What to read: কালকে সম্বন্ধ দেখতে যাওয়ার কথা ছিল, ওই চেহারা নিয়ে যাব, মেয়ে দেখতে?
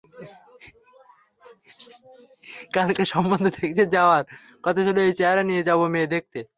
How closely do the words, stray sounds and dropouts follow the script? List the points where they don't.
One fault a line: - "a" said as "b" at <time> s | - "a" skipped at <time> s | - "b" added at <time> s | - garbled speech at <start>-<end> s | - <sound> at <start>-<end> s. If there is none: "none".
- "ওই" said as "এই" at 5.0 s